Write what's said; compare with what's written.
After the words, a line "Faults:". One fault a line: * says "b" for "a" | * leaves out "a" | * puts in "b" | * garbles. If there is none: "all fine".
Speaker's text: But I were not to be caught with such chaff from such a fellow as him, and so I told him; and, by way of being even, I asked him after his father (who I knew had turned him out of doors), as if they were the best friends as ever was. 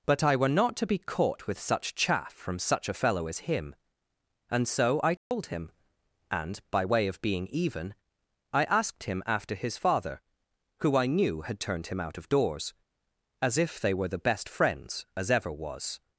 But I were not to be caught with such chaff from such a fellow as him, and so I told him; and, by way of being even, I asked him after his father (who I knew had turned him out of doors), as if they were the best friends as ever was.
Faults:
all fine